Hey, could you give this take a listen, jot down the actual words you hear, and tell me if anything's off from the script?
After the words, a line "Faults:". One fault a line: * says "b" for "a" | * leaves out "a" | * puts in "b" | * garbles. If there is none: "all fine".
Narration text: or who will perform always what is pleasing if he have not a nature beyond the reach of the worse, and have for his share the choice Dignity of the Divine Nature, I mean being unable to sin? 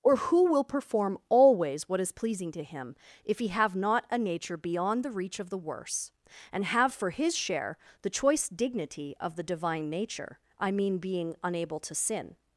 or who will perform always what is pleasing to Him, if he have not a nature beyond the reach of the worse, and have for his share the choice Dignity of the Divine Nature, I mean being unable to sin?
Faults:
* puts in "to Him"